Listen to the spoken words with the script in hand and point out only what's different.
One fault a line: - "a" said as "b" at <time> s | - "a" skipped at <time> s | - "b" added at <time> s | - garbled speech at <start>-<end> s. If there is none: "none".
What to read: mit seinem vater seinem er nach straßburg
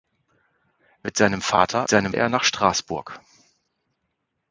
none